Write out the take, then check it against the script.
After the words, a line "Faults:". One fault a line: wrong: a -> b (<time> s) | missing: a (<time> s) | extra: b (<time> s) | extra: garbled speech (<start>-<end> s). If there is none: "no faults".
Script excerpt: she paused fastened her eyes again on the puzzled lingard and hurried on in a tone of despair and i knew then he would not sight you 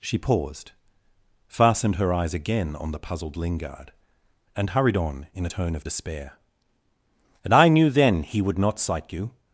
she paused fastened her eyes again on the puzzled lingard and hurried on in a tone of despair and i knew then he would not sight you
Faults:
no faults